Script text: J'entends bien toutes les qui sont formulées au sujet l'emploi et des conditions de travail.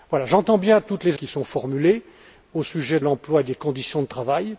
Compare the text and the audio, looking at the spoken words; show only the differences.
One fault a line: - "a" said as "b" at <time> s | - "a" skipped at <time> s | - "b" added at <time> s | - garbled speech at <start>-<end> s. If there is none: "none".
none